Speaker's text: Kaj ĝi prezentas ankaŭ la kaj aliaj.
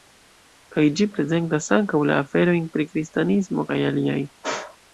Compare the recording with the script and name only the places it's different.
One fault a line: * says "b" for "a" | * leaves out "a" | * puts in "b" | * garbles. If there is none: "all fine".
* puts in "aferojn pri kristanismo"